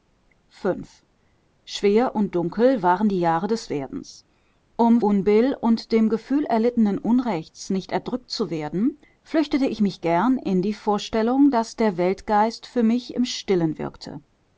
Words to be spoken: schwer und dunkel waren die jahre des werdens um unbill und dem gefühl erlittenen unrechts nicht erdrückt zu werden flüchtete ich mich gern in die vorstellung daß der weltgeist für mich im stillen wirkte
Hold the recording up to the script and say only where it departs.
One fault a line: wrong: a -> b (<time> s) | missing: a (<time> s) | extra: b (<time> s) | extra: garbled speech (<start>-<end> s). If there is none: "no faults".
no faults